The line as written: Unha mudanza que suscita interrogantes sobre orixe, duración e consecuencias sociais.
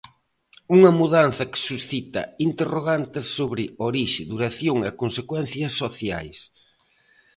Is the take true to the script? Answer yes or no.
yes